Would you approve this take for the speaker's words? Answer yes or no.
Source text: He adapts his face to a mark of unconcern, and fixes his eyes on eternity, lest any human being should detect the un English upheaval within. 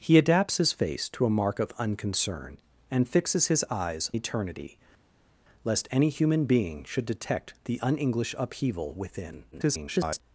no